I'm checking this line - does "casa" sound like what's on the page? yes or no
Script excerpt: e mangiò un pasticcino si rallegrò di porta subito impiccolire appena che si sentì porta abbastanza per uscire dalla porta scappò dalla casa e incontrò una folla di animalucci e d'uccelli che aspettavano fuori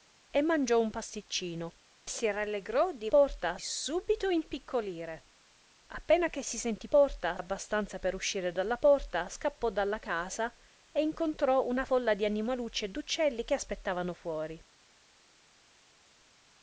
yes